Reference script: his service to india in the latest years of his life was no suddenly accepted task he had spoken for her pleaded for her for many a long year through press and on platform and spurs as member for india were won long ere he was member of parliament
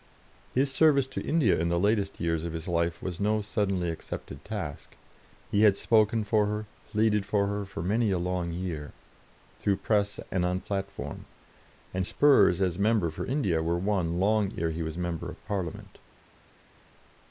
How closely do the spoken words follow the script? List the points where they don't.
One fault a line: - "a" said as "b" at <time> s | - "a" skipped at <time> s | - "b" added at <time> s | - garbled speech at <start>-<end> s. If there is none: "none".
none